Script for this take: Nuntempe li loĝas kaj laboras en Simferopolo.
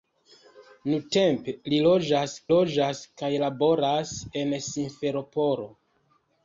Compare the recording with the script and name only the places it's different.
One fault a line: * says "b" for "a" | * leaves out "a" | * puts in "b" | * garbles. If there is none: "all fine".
* puts in "loĝas"